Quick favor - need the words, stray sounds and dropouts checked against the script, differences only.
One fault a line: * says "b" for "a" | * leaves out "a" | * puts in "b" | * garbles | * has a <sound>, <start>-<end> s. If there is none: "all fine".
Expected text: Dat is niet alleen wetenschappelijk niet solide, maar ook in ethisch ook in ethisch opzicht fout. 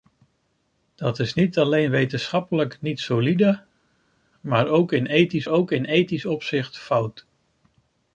all fine